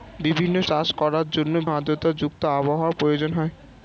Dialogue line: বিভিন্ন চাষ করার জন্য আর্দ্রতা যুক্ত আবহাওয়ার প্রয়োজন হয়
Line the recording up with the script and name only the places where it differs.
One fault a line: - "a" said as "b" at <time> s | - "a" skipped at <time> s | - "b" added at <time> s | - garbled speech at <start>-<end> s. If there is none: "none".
none